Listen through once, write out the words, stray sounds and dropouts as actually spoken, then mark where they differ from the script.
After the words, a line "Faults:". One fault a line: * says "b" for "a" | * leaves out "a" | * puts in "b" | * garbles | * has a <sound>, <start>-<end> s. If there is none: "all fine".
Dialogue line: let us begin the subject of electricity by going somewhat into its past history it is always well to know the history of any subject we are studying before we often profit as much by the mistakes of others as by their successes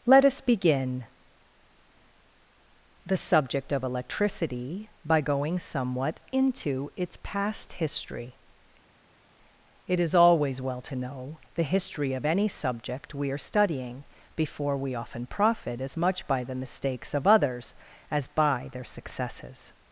let us begin the subject of electricity by going somewhat into its past history it is always well to know the history of any subject we are studying before we often profit as much by the mistakes of others as by their successes
Faults:
all fine